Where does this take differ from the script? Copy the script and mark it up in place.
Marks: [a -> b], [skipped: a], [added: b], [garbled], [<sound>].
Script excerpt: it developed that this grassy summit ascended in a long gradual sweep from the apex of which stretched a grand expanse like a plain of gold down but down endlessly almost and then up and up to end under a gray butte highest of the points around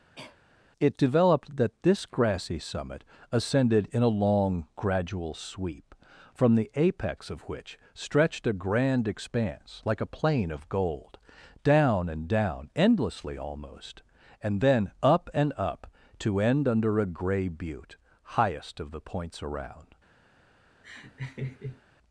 [cough] it developed that this grassy summit ascended in a long gradual sweep from the apex of which stretched a grand expanse like a plain of gold down [but -> and] down endlessly almost and then up and up to end under a gray butte highest of the points around [laugh]